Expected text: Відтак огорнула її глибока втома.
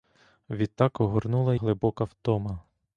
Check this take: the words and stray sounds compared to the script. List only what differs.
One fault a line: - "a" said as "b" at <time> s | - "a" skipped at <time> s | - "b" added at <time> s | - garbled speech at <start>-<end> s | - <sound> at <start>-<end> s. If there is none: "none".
- "її" skipped at 1.6 s